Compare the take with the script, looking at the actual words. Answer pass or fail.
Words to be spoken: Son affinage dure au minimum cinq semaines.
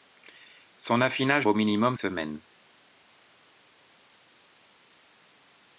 fail